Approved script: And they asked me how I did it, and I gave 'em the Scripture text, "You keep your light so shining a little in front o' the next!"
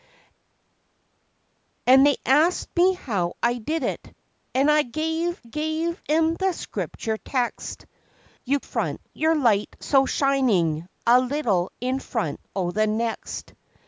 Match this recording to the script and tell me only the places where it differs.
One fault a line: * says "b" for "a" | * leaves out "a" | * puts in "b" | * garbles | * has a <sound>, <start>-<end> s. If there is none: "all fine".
* puts in "gave"
* says "front" for "keep"